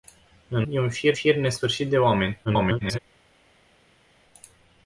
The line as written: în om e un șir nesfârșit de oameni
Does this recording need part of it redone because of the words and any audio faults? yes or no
yes